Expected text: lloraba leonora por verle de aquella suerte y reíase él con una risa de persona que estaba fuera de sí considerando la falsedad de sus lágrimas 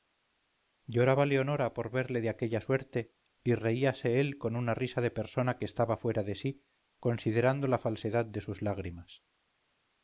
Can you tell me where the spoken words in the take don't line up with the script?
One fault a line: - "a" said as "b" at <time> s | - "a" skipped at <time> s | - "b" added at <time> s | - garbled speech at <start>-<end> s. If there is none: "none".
none